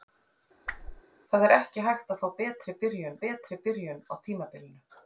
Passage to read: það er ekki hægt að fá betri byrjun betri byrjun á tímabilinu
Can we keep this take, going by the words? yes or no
yes